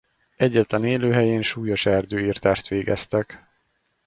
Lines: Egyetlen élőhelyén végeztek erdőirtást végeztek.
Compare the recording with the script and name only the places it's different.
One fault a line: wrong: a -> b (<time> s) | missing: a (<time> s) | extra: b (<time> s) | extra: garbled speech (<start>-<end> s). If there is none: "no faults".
wrong: végeztek -> súlyos (1.4 s)